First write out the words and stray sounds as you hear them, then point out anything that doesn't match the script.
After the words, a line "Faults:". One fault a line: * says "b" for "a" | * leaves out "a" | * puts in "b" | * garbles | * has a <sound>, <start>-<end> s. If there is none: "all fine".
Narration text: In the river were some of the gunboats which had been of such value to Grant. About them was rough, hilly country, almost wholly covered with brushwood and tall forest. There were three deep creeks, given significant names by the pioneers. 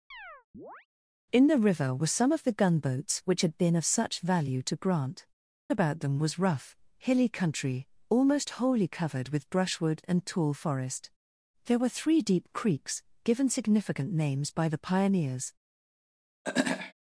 In the river were some of the gunboats which had been of such value to Grant. About them was rough, hilly country, almost wholly covered with brushwood and tall forest. There were three deep creeks, given significant names by the pioneers.
Faults:
* has a chirp, 0.1-0.9 s
* has a throat clearing, 16.4-16.9 s